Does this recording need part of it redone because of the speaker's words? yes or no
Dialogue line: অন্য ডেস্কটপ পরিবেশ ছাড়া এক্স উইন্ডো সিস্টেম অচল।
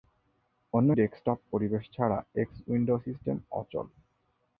no